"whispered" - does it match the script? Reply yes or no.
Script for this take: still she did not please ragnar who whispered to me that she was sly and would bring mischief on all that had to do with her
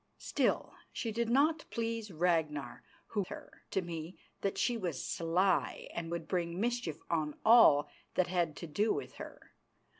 no